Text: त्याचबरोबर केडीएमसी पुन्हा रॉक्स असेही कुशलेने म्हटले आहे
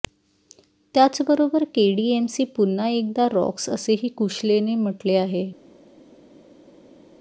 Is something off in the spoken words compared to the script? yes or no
yes